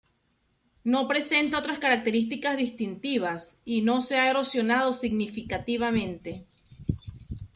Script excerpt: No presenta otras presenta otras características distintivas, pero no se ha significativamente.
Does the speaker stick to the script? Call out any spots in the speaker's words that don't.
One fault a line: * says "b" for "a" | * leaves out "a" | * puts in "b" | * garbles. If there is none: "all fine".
* leaves out "presenta otras"
* says "y" for "pero"
* puts in "erosionado"